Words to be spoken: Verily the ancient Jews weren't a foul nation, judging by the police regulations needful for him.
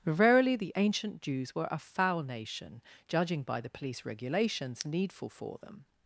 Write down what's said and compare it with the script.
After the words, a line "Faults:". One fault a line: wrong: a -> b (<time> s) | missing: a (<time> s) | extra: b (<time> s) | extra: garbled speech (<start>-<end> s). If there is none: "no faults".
Verily the ancient Jews were a foul nation, judging by the police regulations needful for them.
Faults:
wrong: weren't -> were (1.5 s)
wrong: him -> them (5.6 s)